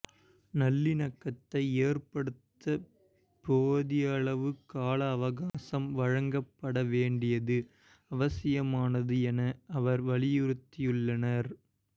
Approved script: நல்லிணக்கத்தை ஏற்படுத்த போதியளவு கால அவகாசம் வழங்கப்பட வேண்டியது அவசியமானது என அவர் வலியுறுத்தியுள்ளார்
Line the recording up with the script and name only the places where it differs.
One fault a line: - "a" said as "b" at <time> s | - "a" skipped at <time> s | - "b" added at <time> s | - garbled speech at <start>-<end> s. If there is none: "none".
none